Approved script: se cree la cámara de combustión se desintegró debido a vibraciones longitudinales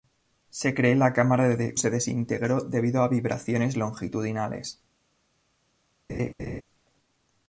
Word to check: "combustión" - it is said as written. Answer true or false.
false